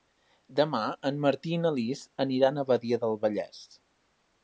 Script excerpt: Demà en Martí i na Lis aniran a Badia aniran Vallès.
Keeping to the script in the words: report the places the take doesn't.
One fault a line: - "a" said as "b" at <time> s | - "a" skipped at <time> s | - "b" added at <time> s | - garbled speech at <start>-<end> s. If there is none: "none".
- "aniran" said as "del" at 3.1 s